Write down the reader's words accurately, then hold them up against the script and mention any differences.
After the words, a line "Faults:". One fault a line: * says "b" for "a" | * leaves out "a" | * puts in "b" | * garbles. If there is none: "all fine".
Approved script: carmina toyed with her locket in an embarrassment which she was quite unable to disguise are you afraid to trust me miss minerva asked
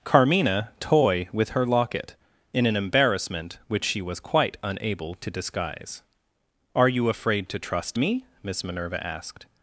carmina toy with her locket in an embarrassment which she was quite unable to disguise are you afraid to trust me miss minerva asked
Faults:
* says "toy" for "toyed"